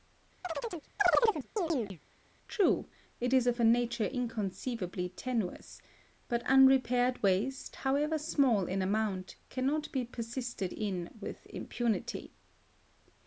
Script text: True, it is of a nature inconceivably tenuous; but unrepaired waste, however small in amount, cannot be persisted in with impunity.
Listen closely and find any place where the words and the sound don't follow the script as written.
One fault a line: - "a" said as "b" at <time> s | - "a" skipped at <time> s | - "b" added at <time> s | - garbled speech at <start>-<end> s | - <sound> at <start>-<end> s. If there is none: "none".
- chirp at 0.4-2.0 s